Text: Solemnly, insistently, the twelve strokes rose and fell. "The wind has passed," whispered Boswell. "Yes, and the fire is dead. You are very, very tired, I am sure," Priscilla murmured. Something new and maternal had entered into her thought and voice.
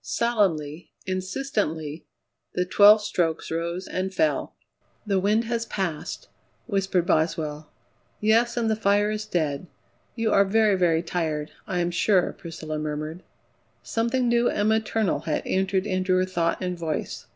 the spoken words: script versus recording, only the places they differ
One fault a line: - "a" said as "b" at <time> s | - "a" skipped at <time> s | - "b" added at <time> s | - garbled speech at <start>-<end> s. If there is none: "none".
none